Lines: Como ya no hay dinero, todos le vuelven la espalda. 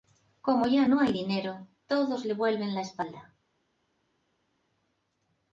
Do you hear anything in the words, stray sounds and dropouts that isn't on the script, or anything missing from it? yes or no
no